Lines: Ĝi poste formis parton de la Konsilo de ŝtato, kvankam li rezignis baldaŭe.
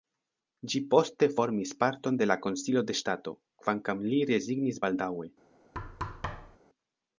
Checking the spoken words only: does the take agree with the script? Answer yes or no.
yes